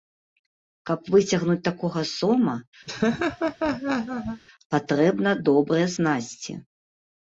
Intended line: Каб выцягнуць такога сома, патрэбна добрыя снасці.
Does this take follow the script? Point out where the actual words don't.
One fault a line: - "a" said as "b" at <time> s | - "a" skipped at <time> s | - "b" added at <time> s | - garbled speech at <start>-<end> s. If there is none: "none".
none